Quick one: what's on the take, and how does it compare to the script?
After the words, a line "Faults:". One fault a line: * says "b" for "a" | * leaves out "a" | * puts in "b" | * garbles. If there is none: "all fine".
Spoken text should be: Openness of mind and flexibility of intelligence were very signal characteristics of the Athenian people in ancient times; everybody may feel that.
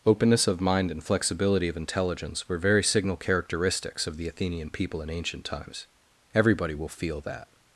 Openness of mind and flexibility of intelligence were very signal characteristics of the Athenian people in ancient times; everybody will feel that.
Faults:
* says "will" for "may"